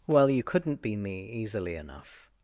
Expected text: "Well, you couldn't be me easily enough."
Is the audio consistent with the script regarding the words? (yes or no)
yes